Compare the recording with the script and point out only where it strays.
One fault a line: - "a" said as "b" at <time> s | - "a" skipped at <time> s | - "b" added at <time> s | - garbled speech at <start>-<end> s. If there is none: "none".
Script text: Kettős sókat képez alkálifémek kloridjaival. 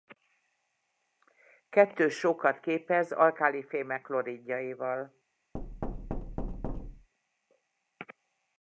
none